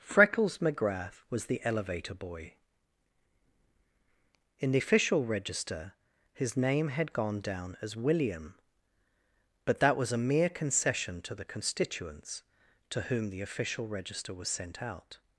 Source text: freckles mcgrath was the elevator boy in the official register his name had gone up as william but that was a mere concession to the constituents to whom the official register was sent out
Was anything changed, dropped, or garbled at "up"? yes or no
yes